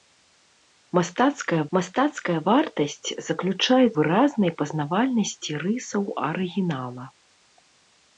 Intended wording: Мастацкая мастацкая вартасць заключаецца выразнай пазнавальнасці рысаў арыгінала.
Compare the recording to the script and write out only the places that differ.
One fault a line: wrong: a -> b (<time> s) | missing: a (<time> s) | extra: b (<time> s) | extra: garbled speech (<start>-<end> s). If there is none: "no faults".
no faults